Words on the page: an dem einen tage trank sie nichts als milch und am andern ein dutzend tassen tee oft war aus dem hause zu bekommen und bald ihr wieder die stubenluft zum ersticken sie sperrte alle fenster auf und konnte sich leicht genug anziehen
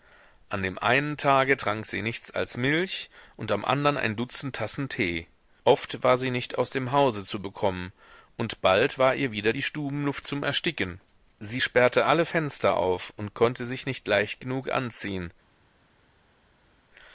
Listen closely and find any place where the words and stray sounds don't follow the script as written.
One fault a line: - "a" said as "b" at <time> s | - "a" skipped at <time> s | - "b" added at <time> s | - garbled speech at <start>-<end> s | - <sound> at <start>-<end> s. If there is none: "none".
- "sie nicht" added at 6.2 s
- "war" added at 9.0 s
- "nicht" added at 13.8 s